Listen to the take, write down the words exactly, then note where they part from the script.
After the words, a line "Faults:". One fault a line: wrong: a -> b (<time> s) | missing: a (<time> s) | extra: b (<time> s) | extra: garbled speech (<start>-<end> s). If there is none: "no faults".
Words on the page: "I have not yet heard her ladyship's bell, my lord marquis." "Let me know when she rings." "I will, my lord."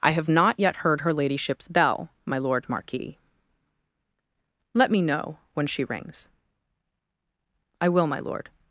"I have not yet heard her ladyship's bell, my lord marquis." "Let me know when she rings." "I will, my lord."
Faults:
no faults